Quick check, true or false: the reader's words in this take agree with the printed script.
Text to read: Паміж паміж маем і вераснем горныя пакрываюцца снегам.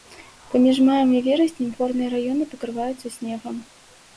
false